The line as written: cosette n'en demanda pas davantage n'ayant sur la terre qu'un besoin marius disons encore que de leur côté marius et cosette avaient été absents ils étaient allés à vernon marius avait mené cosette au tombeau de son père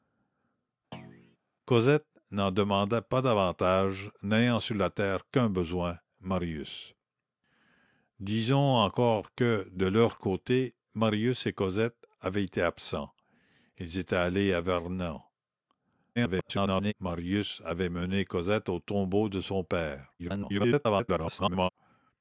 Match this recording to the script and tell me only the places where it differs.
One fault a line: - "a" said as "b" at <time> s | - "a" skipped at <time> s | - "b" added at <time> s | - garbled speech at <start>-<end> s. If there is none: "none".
- garbled speech at 16.2-16.9 s
- garbled speech at 20.2-21.7 s